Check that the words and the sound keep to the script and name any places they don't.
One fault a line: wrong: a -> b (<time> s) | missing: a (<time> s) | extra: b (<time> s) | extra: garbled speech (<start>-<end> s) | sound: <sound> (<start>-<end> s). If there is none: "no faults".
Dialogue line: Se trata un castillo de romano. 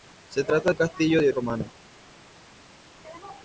no faults